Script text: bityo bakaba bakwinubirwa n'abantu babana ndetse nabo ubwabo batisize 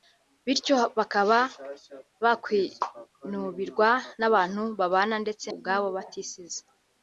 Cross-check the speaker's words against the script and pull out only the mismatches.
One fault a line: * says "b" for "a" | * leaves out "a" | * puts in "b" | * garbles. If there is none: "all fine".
* leaves out "nabo"